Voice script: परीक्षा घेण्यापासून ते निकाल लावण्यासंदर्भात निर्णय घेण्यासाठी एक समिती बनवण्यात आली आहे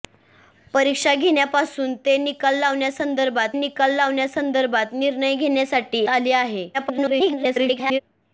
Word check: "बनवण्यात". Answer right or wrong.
wrong